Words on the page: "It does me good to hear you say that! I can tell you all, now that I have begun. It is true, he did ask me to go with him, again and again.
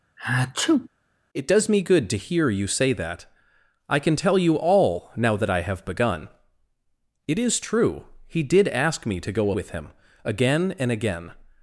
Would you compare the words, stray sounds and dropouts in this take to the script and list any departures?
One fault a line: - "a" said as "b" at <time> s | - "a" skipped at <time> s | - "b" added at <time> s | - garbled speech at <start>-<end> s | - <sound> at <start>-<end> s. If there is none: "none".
- sneeze at 0.2-0.9 s